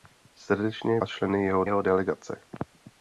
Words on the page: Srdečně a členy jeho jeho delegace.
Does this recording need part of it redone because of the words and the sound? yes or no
no